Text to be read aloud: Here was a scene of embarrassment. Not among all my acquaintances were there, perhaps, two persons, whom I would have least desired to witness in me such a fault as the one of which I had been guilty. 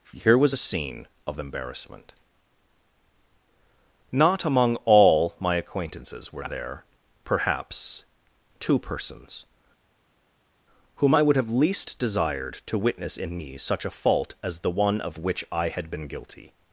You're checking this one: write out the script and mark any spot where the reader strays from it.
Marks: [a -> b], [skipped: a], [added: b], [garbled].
Here was a scene of embarrassment. Not among all my acquaintances were there, perhaps, two persons, whom I would have least desired to witness in me such a fault as the one of which I had been guilty.